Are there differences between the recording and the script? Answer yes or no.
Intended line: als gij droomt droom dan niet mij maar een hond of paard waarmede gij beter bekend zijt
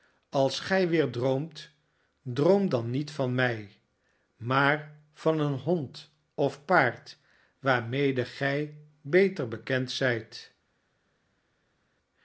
yes